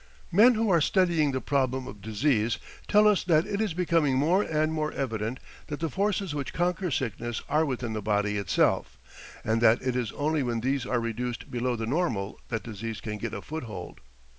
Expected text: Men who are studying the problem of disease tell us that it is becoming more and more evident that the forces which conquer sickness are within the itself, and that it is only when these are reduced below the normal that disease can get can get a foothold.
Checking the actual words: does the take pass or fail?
fail